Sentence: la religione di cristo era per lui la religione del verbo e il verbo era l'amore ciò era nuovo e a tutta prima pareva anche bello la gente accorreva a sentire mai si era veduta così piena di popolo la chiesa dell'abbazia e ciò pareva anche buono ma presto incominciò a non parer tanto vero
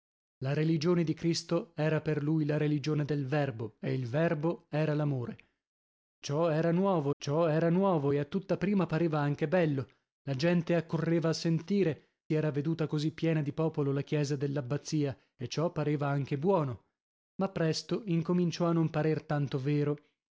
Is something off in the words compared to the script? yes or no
yes